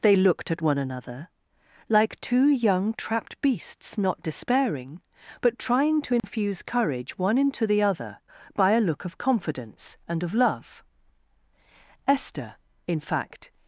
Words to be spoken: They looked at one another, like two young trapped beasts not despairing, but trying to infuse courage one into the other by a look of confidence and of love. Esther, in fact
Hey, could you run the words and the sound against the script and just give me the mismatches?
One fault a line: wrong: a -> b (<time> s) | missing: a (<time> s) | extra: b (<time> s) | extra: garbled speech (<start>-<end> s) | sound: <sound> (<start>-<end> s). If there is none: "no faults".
sound: dropout (6.2-6.2 s)